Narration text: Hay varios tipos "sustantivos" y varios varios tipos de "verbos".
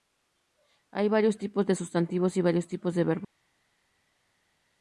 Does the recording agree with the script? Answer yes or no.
no